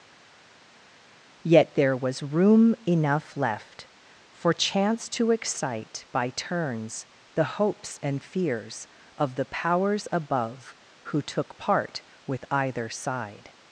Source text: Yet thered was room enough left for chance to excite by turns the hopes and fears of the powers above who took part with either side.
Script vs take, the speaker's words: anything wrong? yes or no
yes